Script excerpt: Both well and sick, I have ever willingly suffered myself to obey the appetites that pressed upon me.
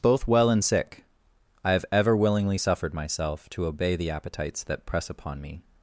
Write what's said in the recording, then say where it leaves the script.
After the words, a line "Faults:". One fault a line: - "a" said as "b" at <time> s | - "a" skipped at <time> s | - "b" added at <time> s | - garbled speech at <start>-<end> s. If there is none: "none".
Both well and sick, I have ever willingly suffered myself to obey the appetites that press upon me.
Faults:
- "pressed" said as "press" at 4.9 s